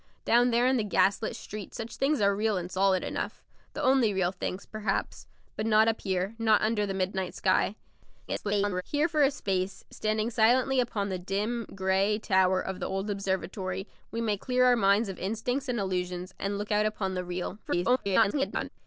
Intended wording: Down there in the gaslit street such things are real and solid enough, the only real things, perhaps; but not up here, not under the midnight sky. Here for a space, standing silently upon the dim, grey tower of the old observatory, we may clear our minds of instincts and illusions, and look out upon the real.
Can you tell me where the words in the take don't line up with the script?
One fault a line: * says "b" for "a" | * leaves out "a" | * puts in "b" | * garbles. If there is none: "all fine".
* garbles
* garbles